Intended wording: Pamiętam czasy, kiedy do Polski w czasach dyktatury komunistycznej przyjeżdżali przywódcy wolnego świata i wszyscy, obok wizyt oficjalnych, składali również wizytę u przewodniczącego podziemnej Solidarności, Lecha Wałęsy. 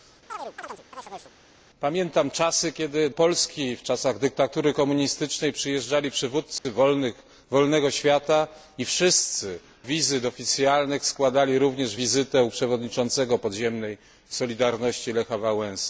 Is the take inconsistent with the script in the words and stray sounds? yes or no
yes